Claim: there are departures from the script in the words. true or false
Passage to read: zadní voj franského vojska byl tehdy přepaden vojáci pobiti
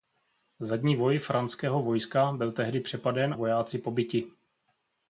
false